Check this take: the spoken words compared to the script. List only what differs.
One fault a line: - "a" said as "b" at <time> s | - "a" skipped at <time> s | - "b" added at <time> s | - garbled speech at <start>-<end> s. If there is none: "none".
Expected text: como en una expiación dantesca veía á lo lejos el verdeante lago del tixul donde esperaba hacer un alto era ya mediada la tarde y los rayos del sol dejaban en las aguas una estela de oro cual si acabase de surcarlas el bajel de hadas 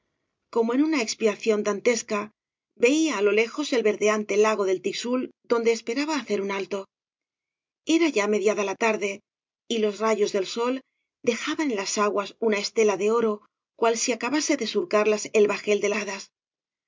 none